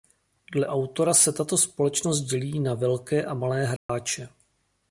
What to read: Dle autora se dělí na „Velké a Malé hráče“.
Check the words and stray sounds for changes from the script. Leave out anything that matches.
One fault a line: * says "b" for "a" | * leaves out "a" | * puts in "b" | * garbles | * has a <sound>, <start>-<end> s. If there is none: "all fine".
* puts in "tato společnost"
* has a dropout, 3.8-3.9 s